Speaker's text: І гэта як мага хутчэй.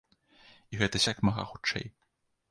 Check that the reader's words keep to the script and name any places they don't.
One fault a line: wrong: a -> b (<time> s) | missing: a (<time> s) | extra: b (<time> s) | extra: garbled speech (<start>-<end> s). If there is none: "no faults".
no faults